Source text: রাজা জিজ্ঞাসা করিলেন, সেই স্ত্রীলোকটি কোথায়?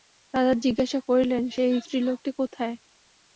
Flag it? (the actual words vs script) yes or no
no